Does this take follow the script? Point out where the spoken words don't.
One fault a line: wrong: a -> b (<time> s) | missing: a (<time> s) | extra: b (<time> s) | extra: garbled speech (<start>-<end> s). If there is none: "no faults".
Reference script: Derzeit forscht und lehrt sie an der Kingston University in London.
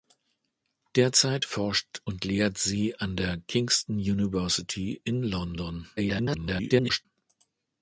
extra: garbled speech (6.0-7.1 s)